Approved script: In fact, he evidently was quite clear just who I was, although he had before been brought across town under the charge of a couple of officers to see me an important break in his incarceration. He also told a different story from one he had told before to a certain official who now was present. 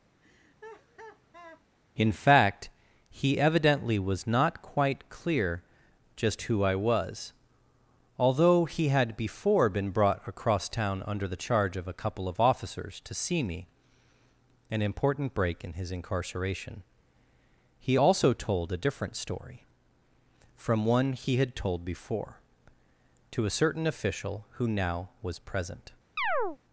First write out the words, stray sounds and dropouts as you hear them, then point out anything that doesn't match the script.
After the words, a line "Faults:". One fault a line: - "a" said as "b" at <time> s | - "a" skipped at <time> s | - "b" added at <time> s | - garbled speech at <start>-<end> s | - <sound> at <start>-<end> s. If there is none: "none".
In fact, he evidently was not quite clear just who I was, although he had before been brought across town under the charge of a couple of officers to see me an important break in his incarceration. He also told a different story from one he had told before to a certain official who now was present.
Faults:
- laugh at 0.2-1.6 s
- "not" added at 4.3 s
- chirp at 26.2-26.6 s